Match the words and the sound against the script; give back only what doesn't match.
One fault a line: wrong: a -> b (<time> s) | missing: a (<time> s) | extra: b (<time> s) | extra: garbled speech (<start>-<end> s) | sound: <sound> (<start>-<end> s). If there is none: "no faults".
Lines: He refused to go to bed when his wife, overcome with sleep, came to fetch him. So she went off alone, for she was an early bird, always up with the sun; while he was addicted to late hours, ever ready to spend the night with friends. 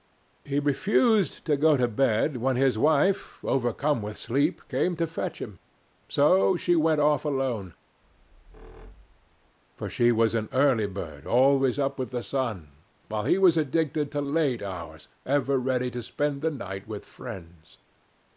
sound: squeak (8.0-9.6 s)